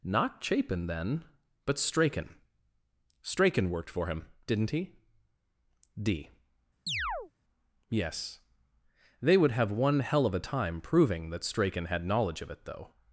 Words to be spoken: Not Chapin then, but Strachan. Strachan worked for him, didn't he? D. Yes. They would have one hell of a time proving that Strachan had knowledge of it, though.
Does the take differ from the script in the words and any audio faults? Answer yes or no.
yes